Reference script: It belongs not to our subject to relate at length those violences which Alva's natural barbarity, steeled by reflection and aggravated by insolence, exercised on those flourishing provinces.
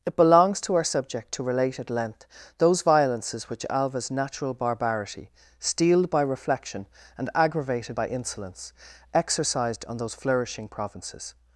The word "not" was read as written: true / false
false